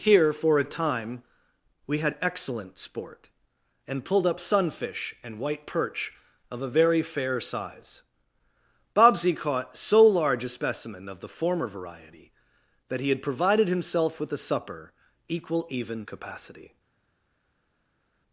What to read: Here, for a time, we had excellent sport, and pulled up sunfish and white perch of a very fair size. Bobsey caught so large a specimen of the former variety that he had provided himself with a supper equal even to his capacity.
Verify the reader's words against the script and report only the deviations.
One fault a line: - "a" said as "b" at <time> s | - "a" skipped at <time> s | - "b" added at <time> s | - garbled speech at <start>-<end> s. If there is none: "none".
- "to his" skipped at 16.0 s